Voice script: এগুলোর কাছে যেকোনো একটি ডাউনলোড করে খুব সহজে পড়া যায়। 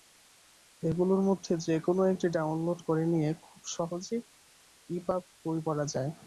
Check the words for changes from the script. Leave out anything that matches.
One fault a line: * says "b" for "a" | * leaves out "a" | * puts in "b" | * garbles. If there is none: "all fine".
* says "মধ্যে" for "কাছে"
* puts in "নিয়ে"
* puts in "ইপাব বই"